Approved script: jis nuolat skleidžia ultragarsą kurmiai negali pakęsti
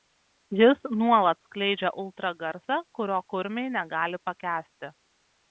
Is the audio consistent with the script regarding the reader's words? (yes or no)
no